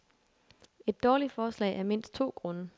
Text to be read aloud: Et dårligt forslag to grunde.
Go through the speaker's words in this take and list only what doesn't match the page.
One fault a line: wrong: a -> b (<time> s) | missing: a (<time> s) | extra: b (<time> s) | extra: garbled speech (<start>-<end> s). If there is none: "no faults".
extra: af mindst (1.8 s)